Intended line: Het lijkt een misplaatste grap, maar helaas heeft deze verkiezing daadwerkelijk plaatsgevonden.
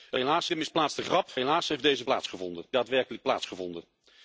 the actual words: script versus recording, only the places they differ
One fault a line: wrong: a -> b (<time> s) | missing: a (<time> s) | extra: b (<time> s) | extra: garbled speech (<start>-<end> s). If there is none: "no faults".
wrong: lijkt -> helaas (0.2 s)
missing: maar (1.3 s)
wrong: verkiezing -> plaatsgevonden (2.0 s)